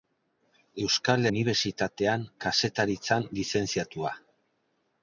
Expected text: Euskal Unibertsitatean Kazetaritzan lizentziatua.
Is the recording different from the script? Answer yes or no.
no